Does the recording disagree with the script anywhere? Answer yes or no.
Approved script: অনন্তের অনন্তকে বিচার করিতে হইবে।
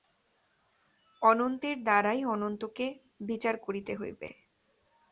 yes